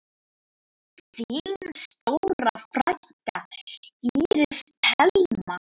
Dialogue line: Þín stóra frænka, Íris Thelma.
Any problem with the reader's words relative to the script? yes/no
no